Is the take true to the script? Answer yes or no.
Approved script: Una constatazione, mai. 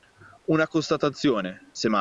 no